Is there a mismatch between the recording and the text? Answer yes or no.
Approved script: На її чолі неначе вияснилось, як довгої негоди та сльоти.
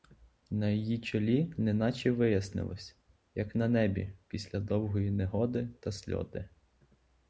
yes